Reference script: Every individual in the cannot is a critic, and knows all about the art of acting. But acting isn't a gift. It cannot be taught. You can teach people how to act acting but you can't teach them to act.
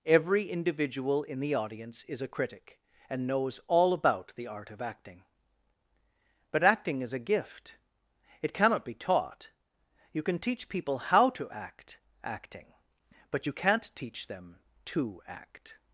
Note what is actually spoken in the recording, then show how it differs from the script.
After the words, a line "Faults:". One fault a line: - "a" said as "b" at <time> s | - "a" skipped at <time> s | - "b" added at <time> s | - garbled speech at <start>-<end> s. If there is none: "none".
Every individual in the audience is a critic, and knows all about the art of acting. But acting is a gift. It cannot be taught. You can teach people how to act acting but you can't teach them to act.
Faults:
- "cannot" said as "audience" at 1.6 s
- "isn't" said as "is" at 7.0 s